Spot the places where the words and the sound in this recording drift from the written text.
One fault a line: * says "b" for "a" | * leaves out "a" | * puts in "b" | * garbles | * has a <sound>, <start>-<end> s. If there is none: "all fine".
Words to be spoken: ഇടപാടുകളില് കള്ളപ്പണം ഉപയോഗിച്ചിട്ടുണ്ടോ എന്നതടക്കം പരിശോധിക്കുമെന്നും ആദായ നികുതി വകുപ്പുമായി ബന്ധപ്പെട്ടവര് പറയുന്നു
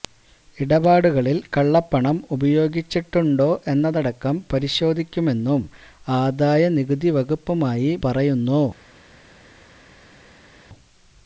* leaves out "ബന്ധപ്പെട്ടവര്"